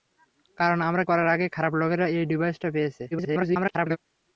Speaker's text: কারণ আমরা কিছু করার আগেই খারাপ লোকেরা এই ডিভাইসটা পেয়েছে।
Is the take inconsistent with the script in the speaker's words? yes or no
yes